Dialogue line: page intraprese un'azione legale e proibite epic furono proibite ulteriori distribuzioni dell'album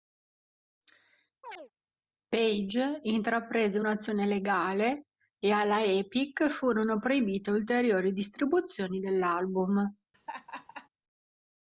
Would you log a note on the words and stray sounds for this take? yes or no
yes